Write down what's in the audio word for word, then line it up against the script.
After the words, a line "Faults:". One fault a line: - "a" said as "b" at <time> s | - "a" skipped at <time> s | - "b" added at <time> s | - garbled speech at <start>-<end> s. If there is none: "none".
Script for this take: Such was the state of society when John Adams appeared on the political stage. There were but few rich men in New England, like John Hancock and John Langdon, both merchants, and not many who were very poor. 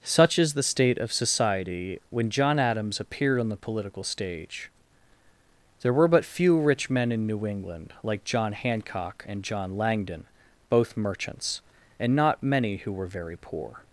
Such is the state of society when John Adams appeared on the political stage. There were but few rich men in New England, like John Hancock and John Langdon, both merchants, and not many who were very poor.
Faults:
- "was" said as "is" at 0.4 s